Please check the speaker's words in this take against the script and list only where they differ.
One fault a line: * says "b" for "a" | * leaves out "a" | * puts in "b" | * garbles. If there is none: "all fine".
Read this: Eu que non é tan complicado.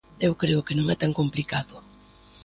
* puts in "creo"